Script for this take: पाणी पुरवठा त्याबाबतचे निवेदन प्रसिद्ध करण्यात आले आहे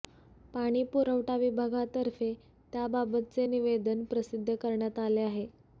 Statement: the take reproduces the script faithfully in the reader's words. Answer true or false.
false